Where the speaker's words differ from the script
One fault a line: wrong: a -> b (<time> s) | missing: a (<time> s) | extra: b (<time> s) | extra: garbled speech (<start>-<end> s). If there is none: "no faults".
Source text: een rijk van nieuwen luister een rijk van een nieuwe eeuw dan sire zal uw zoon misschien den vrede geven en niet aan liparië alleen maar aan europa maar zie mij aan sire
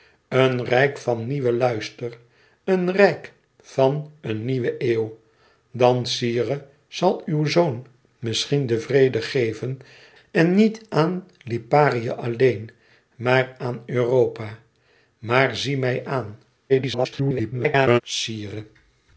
extra: garbled speech (16.7-18.0 s)